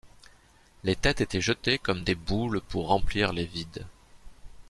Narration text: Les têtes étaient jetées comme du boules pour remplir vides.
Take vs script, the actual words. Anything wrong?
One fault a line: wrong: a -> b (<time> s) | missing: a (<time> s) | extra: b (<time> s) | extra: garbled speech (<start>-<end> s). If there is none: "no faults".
wrong: du -> des (2.0 s)
extra: les (3.3 s)